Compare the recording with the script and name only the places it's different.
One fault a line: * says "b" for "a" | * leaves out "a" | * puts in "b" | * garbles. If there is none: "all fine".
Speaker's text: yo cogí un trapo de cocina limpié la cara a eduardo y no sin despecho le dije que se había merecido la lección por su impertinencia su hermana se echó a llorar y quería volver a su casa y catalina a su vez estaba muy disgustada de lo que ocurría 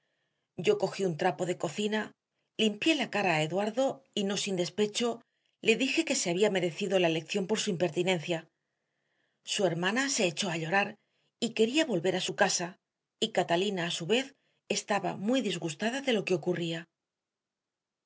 all fine